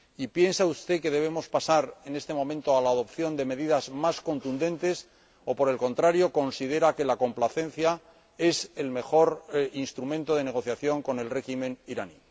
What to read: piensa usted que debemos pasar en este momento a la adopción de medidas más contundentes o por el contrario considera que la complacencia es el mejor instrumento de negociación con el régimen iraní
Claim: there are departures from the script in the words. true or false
false